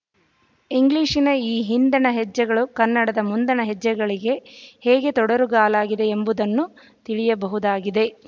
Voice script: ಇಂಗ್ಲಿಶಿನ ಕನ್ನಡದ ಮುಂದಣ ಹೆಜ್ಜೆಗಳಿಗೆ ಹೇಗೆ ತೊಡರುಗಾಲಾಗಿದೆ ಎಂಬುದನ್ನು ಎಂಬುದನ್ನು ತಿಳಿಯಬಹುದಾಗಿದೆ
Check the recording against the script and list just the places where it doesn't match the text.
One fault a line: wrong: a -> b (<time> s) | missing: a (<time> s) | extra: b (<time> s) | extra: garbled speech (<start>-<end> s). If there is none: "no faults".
extra: ಈ ಹಿಂದಣ ಹೆಜ್ಜೆಗಳು (1.4 s)
missing: ಎಂಬುದನ್ನು (6.7 s)